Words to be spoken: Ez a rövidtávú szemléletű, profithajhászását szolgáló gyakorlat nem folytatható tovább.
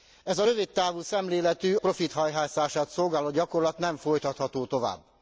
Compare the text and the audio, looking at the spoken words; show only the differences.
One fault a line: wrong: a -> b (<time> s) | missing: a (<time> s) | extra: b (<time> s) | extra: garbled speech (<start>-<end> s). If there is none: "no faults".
no faults